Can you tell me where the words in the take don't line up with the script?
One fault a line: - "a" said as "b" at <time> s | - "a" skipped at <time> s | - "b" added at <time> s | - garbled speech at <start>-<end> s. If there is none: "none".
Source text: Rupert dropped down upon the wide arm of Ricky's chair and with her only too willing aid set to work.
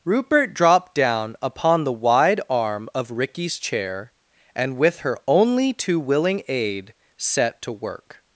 none